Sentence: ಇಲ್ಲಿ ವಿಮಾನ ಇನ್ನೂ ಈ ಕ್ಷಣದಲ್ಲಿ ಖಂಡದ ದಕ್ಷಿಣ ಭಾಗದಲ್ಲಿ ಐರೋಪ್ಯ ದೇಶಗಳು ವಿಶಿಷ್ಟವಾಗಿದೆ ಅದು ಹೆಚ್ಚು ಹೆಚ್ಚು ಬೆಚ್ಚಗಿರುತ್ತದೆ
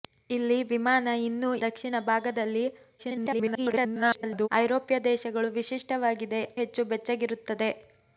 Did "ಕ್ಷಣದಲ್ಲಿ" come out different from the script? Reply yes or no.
yes